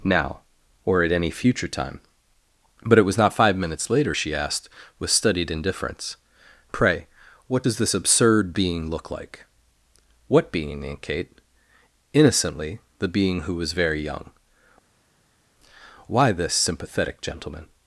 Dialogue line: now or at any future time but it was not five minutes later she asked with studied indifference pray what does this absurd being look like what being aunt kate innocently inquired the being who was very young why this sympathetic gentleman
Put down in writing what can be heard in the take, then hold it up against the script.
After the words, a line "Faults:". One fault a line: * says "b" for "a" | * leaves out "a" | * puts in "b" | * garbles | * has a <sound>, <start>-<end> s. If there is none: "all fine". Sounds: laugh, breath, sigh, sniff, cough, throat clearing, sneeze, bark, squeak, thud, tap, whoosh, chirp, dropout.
now or at any future time but it was not five minutes later she asked with studied indifference pray what does this absurd being look like what being aunt kate innocently the being who was very young why this sympathetic gentleman
Faults:
* leaves out "inquired"